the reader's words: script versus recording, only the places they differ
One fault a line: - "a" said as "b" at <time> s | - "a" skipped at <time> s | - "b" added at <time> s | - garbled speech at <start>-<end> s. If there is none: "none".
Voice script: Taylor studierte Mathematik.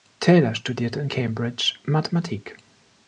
- "in Cambridge" added at 1.0 s